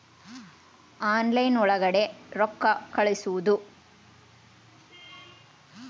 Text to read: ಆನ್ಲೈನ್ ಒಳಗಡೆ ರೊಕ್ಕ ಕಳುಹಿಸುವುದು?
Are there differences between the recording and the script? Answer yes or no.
no